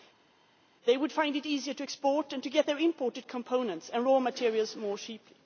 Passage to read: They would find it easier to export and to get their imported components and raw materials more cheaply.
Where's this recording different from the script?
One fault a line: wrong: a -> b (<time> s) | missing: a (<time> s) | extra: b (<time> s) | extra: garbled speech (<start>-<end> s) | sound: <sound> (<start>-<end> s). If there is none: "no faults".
no faults